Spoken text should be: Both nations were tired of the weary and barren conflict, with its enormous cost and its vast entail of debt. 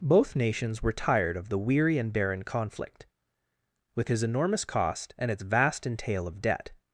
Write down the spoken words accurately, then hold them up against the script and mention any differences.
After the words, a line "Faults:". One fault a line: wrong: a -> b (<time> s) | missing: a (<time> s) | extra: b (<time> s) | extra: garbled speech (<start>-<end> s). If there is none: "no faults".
Both nations were tired of the weary and barren conflict, with his enormous cost and its vast entail of debt.
Faults:
wrong: its -> his (4.1 s)